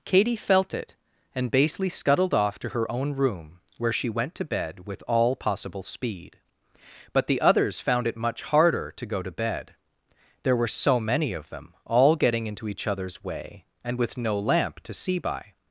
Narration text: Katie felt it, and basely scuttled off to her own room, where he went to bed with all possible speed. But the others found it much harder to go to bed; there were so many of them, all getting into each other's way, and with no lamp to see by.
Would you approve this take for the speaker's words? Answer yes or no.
no